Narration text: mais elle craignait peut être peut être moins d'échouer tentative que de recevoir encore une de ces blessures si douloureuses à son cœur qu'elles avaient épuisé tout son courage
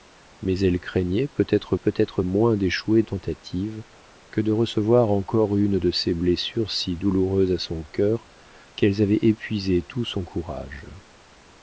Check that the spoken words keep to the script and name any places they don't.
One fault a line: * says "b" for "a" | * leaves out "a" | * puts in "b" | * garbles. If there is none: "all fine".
all fine